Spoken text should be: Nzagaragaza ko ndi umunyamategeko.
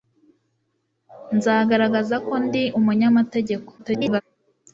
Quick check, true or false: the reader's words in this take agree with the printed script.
false